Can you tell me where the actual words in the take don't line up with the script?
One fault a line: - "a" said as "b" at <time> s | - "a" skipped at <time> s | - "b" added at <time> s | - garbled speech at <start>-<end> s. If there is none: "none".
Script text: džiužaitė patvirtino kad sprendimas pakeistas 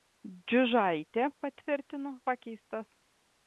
- "kad sprendimas" skipped at 2.1 s